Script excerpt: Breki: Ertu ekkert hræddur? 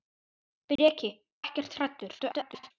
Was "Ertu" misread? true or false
true